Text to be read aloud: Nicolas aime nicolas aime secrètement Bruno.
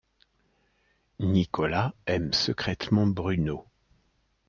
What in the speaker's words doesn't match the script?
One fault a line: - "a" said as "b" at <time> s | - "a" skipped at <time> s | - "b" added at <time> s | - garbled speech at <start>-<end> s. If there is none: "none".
- "nicolas aime" skipped at 2.3 s